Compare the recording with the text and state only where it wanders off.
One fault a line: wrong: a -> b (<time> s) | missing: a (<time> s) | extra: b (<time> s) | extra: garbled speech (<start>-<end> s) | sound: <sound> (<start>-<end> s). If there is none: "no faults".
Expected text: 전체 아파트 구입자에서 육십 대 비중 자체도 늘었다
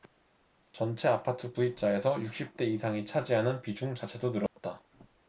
extra: 이상이 차지하는 (2.6 s)
sound: dropout (4.5-4.6 s)